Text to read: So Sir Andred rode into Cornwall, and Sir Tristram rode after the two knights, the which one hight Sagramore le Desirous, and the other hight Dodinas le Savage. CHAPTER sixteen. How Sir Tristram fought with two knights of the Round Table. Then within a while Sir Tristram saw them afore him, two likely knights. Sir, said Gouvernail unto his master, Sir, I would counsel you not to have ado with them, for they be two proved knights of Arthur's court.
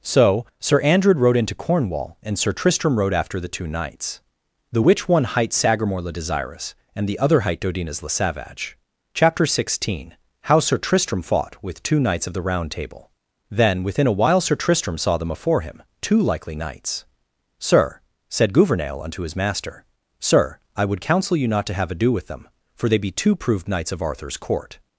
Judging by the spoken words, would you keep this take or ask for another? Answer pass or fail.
pass